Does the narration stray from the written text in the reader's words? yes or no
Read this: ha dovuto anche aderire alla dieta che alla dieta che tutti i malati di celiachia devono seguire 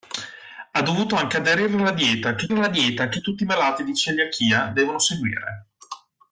no